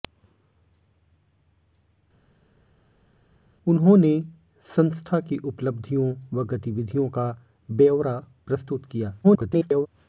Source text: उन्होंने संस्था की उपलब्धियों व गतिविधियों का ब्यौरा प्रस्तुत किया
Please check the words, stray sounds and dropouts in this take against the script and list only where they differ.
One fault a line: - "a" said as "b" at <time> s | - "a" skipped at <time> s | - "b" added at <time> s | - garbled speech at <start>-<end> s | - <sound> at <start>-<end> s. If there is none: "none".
- garbled speech at 9.2-9.9 s